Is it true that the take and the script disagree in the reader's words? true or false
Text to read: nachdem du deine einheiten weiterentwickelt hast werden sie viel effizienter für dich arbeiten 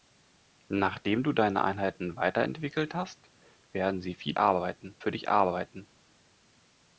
true